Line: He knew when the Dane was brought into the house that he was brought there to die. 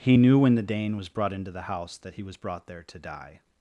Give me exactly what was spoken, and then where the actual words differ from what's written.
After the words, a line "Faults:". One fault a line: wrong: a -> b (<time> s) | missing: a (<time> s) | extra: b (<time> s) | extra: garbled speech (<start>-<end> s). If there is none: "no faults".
He knew when the Dane was brought into the house that he was brought there to die.
Faults:
no faults